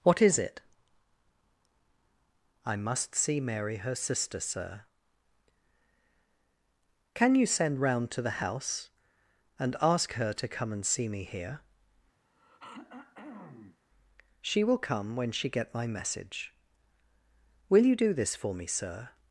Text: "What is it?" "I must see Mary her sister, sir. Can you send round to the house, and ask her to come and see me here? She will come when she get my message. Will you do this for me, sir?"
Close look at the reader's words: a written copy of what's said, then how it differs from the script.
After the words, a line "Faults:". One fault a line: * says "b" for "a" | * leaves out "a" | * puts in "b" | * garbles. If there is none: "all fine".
"What is it?" "I must see Mary her sister, sir. Can you send round to the house, and ask her to come and see me here? She will come when she get my message. Will you do this for me, sir?"
Faults:
all fine